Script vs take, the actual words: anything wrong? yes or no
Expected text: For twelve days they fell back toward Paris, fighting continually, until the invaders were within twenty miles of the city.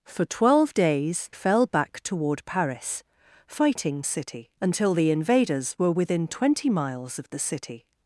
yes